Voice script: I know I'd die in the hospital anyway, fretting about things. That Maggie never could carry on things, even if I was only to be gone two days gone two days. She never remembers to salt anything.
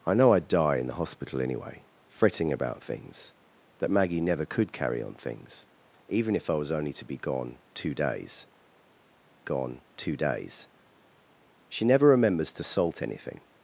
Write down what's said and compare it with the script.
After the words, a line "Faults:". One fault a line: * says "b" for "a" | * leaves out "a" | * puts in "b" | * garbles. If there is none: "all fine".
I know I'd die in the hospital anyway, fretting about things. That Maggie never could carry on things, even if I was only to be gone two days gone two days. She never remembers to salt anything.
Faults:
all fine